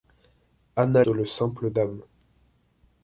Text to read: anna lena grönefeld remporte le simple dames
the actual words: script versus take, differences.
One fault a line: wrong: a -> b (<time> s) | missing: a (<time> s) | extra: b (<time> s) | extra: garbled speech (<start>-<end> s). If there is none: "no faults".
missing: lena grönefeld remporte (1.0 s)